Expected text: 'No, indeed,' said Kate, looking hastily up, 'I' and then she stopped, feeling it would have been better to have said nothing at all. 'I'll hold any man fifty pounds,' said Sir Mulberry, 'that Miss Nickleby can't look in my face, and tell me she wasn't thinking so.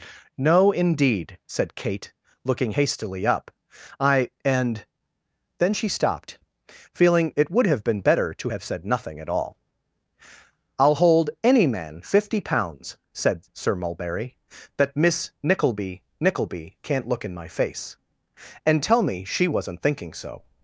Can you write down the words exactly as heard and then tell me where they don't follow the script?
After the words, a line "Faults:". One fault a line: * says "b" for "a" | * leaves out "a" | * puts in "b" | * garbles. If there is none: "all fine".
'No, indeed,' said Kate, looking hastily up, 'I' and then she stopped, feeling it would have been better to have said nothing at all. 'I'll hold any man fifty pounds,' said Sir Mulberry, 'that Miss Nickleby Nickleby can't look in my face, and tell me she wasn't thinking so.
Faults:
* puts in "Nickleby"